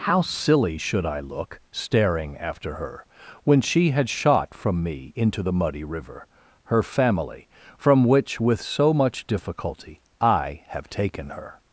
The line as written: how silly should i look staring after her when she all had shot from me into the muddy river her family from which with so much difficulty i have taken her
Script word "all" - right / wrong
wrong